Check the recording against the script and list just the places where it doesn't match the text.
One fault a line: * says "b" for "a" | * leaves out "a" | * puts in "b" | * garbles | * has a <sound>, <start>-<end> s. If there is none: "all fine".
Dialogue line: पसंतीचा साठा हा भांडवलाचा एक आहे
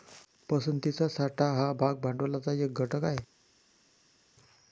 * puts in "भाग"
* puts in "घटक"